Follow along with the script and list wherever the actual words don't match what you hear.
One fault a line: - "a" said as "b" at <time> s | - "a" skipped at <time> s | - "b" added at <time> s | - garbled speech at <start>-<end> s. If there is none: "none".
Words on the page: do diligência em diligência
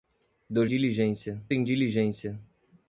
none